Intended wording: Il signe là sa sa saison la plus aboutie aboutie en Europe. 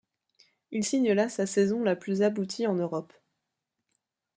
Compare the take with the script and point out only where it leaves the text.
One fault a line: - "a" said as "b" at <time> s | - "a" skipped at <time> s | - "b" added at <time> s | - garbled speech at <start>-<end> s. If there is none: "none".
- "sa" skipped at 1.5 s
- "aboutie" skipped at 2.7 s